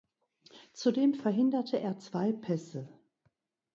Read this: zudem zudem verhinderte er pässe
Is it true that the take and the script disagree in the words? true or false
true